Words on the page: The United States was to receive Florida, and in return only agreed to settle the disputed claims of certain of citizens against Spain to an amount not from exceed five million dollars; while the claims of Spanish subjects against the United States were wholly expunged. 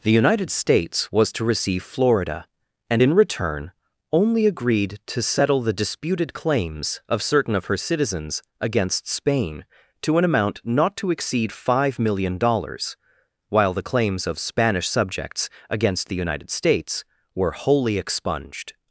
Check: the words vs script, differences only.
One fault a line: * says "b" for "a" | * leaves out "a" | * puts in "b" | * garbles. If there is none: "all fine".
* puts in "her"
* says "to" for "from"